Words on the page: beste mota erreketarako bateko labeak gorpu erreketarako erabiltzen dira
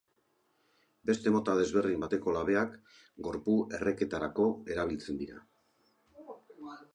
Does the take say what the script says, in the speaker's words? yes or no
no